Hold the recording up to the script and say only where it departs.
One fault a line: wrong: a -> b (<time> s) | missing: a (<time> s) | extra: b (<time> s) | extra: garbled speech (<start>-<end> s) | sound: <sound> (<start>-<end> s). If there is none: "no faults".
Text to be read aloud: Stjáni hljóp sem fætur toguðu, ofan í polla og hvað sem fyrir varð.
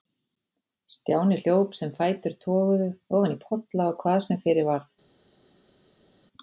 no faults